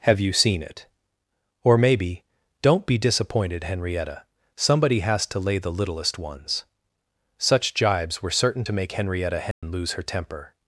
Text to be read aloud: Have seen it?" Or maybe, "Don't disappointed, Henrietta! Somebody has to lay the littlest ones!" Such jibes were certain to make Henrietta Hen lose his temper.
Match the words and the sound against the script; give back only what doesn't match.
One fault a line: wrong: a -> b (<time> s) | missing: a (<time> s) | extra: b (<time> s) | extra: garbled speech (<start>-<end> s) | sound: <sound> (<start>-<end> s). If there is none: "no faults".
extra: you (0.2 s)
extra: be (2.9 s)
sound: dropout (9.5-9.6 s)
wrong: his -> her (9.9 s)